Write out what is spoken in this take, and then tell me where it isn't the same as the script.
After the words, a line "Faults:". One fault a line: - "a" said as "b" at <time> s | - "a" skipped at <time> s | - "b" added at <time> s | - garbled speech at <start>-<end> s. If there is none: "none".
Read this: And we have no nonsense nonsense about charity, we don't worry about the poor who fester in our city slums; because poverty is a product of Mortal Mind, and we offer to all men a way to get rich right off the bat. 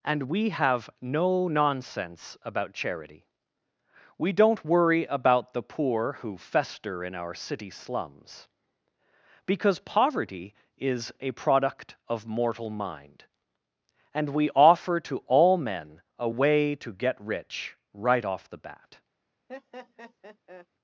And we have no nonsense about charity, we don't worry about the poor who fester in our city slums; because poverty is a product of Mortal Mind, and we offer to all men a way to get rich right off the bat.
Faults:
- "nonsense" skipped at 2.4 s